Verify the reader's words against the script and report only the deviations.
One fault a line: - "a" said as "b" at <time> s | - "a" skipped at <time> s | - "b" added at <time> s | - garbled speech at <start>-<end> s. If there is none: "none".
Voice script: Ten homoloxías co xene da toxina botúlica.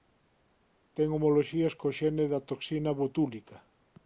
none